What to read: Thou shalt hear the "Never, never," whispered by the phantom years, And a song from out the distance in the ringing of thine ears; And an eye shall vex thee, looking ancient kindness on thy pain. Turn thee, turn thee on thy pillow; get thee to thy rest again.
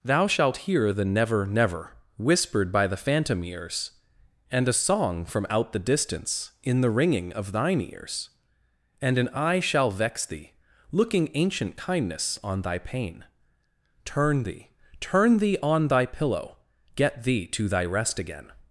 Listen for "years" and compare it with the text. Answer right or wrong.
wrong